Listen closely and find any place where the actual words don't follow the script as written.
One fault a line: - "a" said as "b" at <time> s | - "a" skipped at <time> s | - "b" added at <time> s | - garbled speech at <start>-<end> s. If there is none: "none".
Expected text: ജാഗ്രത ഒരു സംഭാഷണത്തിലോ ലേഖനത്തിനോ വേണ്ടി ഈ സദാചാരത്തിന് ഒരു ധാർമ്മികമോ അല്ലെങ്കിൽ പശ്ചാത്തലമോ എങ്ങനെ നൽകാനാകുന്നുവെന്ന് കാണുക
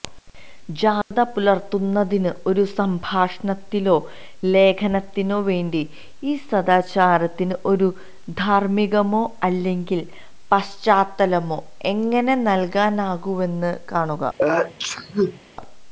- "പുലർത്തുന്നതിന്" added at 1.3 s